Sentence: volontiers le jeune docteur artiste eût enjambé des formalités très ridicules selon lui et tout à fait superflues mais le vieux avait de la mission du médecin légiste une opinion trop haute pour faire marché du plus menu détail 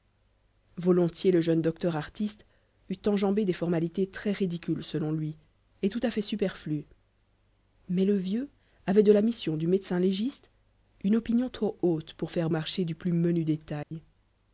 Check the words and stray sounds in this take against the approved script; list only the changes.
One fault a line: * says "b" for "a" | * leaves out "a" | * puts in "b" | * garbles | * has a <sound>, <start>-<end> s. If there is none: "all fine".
* has a dropout, 13.8-13.9 s